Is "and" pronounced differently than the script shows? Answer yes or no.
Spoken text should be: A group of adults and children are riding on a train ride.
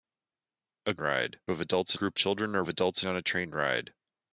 yes